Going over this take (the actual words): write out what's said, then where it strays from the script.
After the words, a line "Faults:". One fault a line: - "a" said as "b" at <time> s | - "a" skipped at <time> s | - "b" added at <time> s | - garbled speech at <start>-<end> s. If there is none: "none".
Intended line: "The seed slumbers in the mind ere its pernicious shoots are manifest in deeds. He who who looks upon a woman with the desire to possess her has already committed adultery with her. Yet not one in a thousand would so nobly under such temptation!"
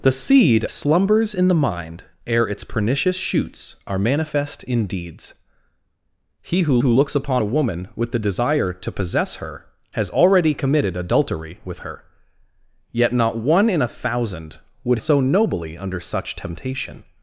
"The seed slumbers in the mind ere its pernicious shoots are manifest in deeds. He who who looks upon a woman with the desire to possess her has already committed adultery with her. Yet not one in a thousand would so nobly under such temptation!"
Faults:
none